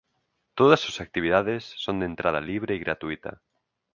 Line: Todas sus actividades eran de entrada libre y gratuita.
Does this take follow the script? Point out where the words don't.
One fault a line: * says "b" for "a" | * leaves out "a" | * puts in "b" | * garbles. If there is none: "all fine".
* says "son" for "eran"